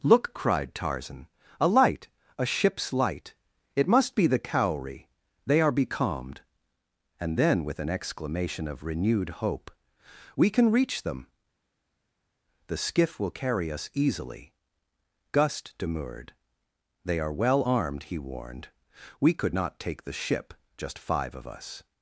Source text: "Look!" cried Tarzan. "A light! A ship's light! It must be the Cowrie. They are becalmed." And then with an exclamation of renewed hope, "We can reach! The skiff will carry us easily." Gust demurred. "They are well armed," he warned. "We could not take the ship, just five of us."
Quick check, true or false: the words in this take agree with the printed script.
false